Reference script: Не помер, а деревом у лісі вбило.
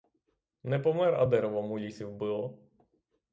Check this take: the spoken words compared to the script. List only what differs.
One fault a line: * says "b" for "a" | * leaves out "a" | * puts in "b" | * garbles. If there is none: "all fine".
all fine